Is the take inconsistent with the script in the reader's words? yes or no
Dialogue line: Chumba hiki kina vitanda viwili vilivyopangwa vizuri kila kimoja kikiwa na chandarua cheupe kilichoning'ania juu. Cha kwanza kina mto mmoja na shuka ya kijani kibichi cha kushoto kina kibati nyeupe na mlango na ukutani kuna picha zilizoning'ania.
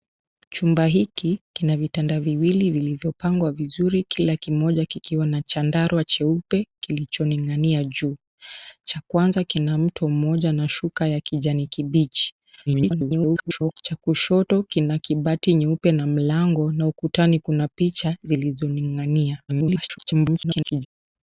yes